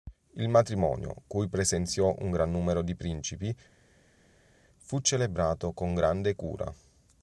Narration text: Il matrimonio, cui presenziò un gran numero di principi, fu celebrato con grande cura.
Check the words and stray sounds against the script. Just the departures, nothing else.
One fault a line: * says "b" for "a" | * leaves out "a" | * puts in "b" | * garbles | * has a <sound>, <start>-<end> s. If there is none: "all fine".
all fine